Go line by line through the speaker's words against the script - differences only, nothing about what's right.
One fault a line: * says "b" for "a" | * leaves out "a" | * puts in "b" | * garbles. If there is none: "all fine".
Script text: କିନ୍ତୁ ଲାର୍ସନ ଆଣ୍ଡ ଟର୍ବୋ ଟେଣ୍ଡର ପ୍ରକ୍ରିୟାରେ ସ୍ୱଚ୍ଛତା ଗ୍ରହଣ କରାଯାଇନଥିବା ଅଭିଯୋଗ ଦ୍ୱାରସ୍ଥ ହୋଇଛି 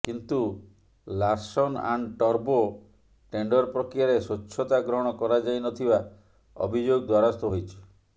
all fine